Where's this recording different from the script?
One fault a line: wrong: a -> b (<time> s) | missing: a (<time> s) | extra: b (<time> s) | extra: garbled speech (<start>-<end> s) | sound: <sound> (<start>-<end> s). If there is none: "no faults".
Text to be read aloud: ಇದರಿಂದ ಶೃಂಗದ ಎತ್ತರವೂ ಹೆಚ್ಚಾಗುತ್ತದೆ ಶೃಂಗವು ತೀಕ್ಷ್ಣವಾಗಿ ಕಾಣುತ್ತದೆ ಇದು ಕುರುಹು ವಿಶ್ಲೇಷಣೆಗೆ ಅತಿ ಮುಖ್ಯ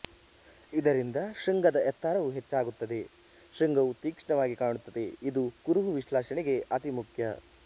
no faults